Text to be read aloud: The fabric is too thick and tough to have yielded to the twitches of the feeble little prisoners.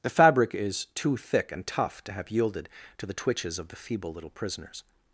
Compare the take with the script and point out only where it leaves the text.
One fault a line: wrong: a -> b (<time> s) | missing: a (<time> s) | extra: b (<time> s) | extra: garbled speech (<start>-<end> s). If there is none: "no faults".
no faults